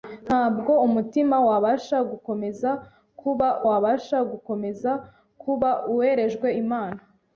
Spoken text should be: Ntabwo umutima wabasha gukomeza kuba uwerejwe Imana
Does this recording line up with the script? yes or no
no